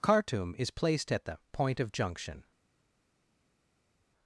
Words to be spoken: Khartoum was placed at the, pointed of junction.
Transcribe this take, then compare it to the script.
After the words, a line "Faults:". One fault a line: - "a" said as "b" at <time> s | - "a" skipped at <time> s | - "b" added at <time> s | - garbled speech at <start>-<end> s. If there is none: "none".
Khartoum is placed at the, point of junction.
Faults:
- "was" said as "is" at 0.6 s
- "pointed" said as "point" at 1.5 s